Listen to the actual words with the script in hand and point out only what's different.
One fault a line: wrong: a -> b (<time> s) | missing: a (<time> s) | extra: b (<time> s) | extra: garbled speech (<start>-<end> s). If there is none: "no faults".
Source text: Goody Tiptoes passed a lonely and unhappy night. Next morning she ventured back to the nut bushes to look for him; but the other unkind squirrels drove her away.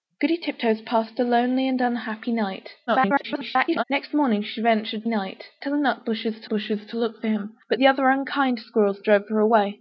extra: garbled speech (2.9-3.8 s)
wrong: back -> night (5.1 s)
extra: bushes to (6.5 s)